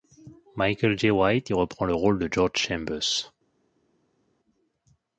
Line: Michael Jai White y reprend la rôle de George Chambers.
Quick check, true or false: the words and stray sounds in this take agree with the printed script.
false